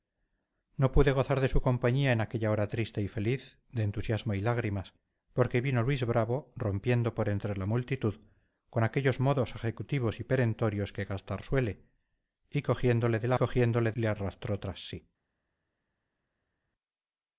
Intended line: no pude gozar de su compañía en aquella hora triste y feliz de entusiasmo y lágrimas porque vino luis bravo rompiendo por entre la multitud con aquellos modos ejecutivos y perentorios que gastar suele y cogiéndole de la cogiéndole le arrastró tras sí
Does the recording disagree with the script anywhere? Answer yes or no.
no